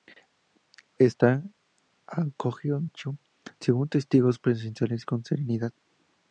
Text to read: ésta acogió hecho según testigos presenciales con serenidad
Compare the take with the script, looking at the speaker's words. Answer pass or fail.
pass